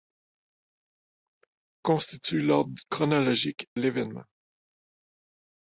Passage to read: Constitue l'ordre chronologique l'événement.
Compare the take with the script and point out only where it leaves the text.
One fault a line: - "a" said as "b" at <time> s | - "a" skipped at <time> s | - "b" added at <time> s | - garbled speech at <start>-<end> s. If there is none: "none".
none